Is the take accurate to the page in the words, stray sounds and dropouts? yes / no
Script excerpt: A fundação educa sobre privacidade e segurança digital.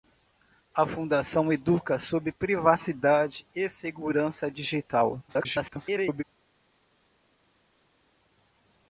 no